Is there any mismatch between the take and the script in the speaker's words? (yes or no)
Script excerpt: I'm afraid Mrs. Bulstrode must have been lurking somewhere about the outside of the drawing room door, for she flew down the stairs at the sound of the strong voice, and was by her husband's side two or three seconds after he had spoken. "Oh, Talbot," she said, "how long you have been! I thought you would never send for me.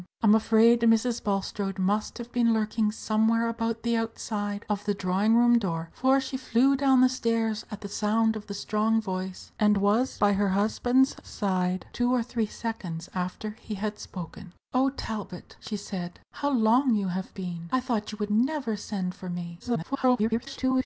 yes